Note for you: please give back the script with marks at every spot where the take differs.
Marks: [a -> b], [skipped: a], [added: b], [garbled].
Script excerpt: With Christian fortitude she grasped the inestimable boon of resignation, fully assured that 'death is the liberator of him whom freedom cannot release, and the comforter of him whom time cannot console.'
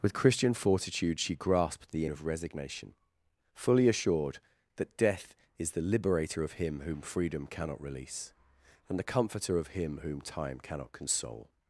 With Christian fortitude she grasped the [skipped: inestimable boon] of resignation, fully assured that 'death is the liberator of him whom freedom cannot release, and the comforter of him whom time cannot console.'